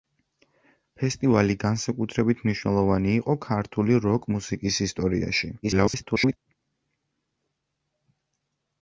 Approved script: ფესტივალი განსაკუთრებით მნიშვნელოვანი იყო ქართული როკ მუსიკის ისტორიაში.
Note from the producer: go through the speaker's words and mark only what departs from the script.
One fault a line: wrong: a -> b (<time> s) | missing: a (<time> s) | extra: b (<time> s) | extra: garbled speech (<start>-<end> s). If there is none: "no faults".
extra: garbled speech (5.6-6.4 s)